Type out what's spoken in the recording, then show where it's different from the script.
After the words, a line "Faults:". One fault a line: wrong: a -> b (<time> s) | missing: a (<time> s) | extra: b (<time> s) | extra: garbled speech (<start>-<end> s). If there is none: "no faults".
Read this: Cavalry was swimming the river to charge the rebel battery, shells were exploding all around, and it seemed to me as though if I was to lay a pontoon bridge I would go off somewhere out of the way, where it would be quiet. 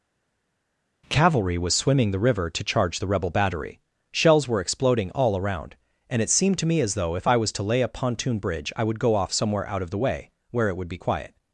Cavalry was swimming the river to charge the rebel battery, shells were exploding all around, and it seemed to me as though if I was to lay a pontoon bridge I would go off somewhere out of the way, where it would be quiet.
Faults:
no faults